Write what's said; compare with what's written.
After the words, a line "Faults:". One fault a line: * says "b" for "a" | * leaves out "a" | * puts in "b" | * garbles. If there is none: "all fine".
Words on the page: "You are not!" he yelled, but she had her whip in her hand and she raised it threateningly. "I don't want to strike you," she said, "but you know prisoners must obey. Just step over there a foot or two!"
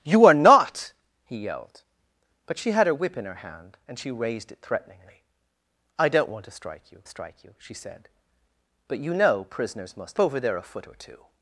"You are not!" he yelled, but she had her whip in her hand and she raised it threateningly. "I don't want to strike you strike you," she said, "but you know prisoners must over there a foot or two!"
Faults:
* puts in "strike you"
* leaves out "obey Just step"